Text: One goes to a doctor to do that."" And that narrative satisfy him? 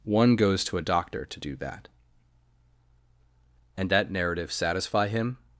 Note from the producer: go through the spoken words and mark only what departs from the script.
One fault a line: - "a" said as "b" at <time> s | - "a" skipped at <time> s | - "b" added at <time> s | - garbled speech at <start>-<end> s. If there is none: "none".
none